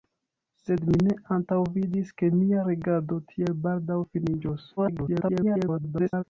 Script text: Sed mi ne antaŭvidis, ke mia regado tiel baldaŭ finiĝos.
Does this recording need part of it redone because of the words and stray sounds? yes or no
yes